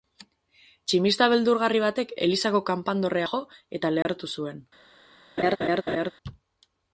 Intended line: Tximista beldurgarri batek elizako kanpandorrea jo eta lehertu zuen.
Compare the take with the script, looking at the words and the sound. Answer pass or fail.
fail